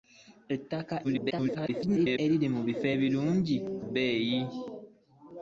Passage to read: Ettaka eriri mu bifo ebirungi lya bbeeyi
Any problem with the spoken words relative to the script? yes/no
yes